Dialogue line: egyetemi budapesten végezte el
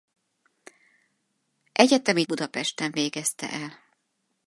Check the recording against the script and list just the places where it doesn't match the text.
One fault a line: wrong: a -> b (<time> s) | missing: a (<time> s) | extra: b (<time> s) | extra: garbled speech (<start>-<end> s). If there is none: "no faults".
no faults